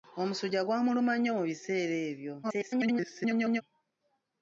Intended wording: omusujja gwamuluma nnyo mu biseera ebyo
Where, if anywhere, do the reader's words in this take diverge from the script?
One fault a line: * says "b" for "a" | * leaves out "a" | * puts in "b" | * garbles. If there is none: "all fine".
* garbles